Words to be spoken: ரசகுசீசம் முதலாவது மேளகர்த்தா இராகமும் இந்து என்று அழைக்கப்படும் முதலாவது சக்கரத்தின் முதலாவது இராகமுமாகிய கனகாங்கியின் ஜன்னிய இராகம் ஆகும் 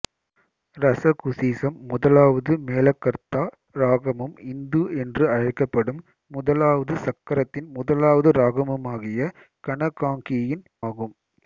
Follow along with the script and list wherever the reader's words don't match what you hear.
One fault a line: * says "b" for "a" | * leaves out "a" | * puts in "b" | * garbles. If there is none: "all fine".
* leaves out "ஜன்னிய இராகம்"